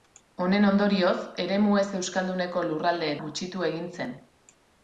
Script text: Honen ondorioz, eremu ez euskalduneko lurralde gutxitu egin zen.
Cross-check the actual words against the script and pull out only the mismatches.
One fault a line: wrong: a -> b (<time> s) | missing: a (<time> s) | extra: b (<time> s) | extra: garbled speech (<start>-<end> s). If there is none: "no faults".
no faults